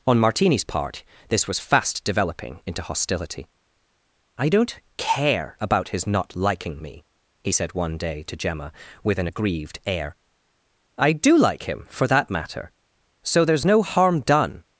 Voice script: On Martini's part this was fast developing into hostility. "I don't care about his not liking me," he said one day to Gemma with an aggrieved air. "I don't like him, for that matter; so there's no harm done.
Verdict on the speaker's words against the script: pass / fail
fail